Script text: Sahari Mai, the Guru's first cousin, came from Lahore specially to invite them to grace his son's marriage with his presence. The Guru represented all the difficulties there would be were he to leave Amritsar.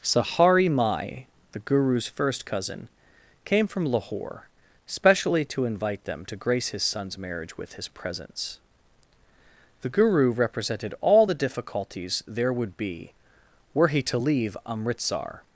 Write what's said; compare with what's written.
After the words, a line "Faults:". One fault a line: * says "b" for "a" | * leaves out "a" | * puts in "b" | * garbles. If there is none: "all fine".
Sahari Mai, the Guru's first cousin, came from Lahore specially to invite them to grace his son's marriage with his presence. The Guru represented all the difficulties there would be were he to leave Amritsar.
Faults:
all fine